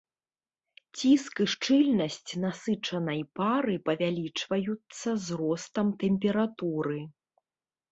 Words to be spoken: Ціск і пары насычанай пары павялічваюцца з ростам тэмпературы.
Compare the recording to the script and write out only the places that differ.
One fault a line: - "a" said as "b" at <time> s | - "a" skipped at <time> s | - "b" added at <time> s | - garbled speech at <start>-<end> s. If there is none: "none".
- "пары" said as "шчыльнасць" at 1.5 s